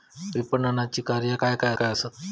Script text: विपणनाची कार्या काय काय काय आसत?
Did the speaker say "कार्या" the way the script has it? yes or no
yes